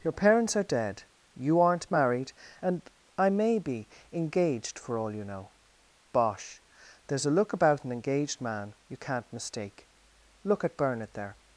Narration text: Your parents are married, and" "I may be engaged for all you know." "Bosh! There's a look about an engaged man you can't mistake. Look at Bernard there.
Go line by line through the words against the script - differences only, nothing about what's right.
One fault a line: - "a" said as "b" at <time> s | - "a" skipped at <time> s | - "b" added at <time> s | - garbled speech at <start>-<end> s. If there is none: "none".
- "dead you aren't" added at 0.6 s